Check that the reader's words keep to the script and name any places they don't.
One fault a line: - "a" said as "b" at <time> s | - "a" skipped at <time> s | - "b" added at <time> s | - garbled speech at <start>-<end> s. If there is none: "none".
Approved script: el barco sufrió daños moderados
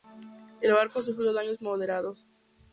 none